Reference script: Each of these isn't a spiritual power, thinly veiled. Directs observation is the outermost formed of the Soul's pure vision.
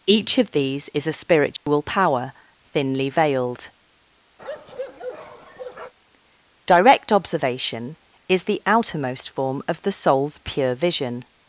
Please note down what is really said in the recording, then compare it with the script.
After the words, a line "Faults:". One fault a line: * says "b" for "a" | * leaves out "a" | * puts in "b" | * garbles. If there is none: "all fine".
Each of these is a spiritual power, thinly veiled. Direct observation is the outermost form of the Soul's pure vision.
Faults:
* says "is" for "isn't"
* says "Direct" for "Directs"
* says "form" for "formed"